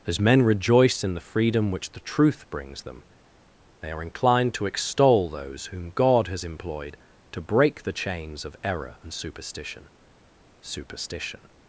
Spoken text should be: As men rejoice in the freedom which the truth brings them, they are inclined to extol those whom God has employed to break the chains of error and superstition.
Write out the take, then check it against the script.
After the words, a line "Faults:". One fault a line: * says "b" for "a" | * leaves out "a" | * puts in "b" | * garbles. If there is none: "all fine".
As men rejoice in the freedom which the truth brings them, they are inclined to extol those whom God has employed to break the chains of error and superstition superstition.
Faults:
* puts in "superstition"